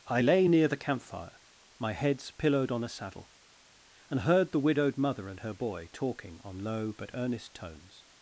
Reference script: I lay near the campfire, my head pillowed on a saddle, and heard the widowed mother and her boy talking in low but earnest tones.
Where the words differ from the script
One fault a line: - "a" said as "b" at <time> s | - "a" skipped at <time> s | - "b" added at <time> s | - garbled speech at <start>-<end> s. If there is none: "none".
- "head" said as "heads" at 1.9 s
- "in" said as "on" at 6.4 s